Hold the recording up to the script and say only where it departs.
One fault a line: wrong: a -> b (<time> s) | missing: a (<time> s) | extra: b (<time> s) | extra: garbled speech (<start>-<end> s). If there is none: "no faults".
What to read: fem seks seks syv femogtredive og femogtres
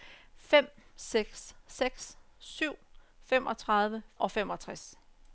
no faults